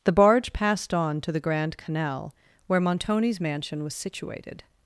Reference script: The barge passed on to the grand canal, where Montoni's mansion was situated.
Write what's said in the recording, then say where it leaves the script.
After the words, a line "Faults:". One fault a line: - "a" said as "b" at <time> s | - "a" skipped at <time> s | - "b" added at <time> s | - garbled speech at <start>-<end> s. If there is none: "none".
The barge passed on to the grand canal, where Montoni's mansion was situated.
Faults:
none